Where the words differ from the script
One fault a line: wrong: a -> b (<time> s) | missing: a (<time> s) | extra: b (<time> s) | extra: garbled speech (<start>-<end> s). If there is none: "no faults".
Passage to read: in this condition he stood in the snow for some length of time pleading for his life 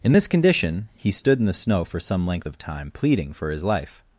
no faults